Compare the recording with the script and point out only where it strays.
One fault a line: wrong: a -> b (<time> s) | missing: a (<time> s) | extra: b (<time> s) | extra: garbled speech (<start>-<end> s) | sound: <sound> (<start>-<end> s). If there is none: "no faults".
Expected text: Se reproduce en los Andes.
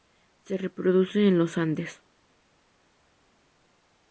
no faults